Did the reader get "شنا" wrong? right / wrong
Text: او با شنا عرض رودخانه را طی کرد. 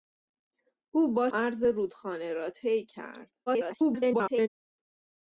wrong